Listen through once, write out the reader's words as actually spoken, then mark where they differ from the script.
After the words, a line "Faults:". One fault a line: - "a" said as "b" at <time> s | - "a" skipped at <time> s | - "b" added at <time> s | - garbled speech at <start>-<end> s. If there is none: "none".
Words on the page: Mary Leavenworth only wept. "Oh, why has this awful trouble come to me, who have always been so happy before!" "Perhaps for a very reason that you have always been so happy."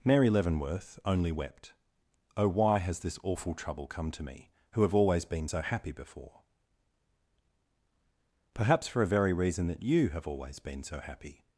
Mary Leavenworth only wept. "Oh, why has this awful trouble come to me, who have always been so happy before!" "Perhaps for a very reason that you have always been so happy."
Faults:
none